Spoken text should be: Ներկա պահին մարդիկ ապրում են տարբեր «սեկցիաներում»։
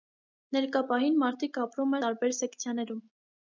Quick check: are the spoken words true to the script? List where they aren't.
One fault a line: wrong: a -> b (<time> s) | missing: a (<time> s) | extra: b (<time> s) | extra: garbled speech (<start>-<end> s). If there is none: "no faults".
missing: են (2.0 s)